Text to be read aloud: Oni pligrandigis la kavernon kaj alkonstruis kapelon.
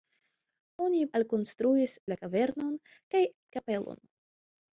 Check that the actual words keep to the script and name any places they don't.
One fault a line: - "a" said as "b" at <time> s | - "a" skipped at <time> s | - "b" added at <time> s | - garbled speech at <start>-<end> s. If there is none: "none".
- "pligrandigis" said as "alkonstruis" at 1.2 s
- "alkonstruis" skipped at 3.2 s